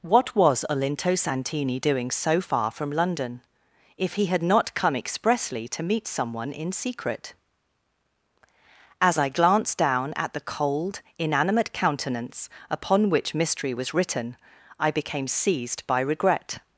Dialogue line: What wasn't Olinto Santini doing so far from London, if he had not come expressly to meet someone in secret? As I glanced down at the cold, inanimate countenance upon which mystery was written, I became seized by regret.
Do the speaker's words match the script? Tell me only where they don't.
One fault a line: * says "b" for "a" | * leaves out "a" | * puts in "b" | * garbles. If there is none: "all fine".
* says "was" for "wasn't"